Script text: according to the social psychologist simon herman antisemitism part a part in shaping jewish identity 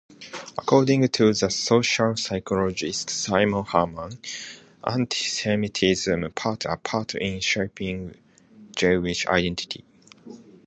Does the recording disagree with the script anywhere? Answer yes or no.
no